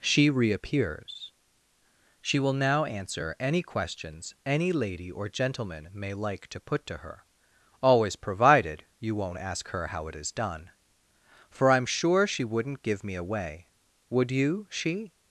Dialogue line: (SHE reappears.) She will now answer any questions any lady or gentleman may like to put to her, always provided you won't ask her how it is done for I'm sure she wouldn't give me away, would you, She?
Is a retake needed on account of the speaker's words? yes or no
no